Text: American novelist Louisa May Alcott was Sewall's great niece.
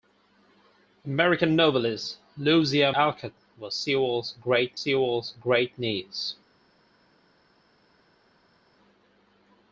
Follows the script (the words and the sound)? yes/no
no